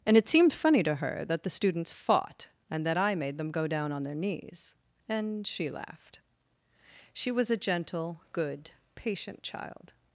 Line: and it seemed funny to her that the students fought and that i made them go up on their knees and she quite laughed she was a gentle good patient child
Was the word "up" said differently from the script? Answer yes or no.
yes